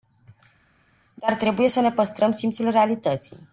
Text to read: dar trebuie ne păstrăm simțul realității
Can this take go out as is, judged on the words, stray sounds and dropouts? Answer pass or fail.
fail